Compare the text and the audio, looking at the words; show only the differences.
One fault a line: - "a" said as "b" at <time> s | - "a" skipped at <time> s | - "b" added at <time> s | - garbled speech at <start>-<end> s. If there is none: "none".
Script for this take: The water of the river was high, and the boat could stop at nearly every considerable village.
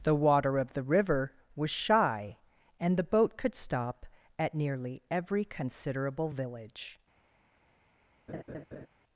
- "high" said as "shy" at 1.7 s